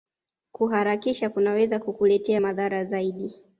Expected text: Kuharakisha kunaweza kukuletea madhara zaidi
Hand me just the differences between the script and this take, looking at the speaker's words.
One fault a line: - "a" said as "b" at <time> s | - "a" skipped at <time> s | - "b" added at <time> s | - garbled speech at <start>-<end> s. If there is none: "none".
none